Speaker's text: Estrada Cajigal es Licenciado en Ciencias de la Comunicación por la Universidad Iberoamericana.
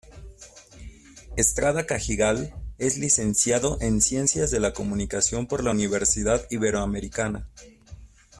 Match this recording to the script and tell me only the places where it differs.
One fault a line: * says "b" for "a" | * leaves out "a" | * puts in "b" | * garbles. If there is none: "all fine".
all fine